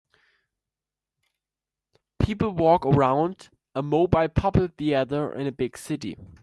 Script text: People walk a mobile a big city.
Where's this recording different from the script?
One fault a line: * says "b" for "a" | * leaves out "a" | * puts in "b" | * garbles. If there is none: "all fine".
* puts in "around"
* puts in "puppet theater in"